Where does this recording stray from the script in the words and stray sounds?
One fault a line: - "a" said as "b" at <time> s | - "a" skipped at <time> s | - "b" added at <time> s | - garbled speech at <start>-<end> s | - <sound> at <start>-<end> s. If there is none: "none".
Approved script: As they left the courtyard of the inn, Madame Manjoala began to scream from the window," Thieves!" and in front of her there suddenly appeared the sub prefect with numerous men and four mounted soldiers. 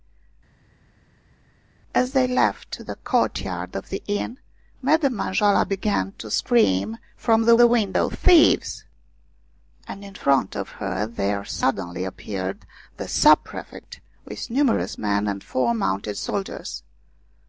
- "the" added at 7.6 s